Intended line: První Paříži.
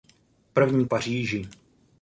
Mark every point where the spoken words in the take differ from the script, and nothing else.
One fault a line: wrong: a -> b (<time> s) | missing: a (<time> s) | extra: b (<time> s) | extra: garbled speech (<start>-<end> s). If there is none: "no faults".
no faults